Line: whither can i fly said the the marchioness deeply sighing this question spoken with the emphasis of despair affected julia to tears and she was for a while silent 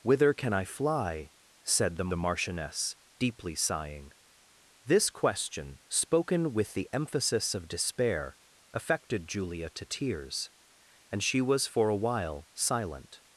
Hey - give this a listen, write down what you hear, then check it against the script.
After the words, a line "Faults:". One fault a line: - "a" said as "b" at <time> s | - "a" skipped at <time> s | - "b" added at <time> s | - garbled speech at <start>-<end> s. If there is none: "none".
whither can i fly said the the marchioness deeply sighing this question spoken with the emphasis of despair affected julia to tears and she was for a while silent
Faults:
none